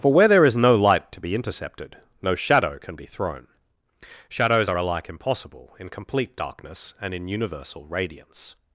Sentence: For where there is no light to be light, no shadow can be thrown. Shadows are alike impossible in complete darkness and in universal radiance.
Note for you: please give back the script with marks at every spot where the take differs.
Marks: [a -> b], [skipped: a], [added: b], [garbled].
For where there is no light to be [light, -> intercepted] no shadow can be thrown. Shadows are alike impossible in complete darkness and in universal radiance.